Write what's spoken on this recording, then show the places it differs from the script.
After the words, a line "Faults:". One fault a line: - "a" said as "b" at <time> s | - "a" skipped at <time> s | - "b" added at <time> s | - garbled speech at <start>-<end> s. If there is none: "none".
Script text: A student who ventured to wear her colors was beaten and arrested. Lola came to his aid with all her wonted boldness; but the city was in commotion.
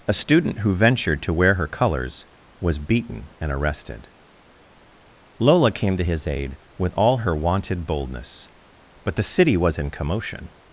A student who ventured to wear her colors was beaten and arrested. Lola came to his aid with all her wonted boldness; but the city was in commotion.
Faults:
none